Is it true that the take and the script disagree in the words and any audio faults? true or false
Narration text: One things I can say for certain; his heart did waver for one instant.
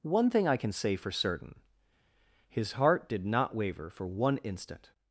true